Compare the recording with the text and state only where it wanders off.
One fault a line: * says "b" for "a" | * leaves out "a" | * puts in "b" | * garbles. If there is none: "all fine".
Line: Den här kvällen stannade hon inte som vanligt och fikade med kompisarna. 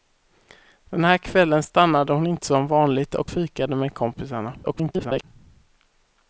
* garbles